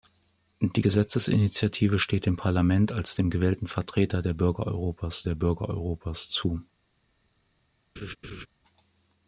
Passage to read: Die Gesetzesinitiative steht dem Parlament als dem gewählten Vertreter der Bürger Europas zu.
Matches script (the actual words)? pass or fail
fail